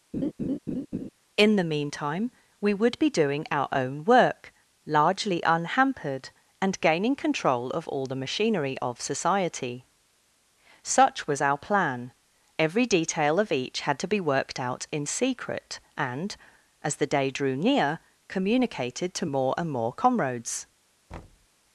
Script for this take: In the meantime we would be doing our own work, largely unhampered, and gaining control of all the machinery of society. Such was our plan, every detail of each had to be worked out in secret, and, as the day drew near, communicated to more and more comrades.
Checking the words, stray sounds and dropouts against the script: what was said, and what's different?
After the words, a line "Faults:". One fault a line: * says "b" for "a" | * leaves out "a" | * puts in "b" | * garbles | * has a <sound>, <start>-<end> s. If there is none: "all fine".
In the meantime we would be doing our own work, largely unhampered, and gaining control of all the machinery of society. Such was our plan, every detail of each had to be worked out in secret, and, as the day drew near, communicated to more and more comrades.
Faults:
* has a laugh, 0.1-1.1 s
* has a thud, 21.1-21.5 s